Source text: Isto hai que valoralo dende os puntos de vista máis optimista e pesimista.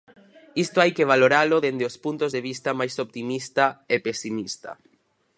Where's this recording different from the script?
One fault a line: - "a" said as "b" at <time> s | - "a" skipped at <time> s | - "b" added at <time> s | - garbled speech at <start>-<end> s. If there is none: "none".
none